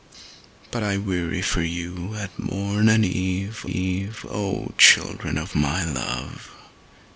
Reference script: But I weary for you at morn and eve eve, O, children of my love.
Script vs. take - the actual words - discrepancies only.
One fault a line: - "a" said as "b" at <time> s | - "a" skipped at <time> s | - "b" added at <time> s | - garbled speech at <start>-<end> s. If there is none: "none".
none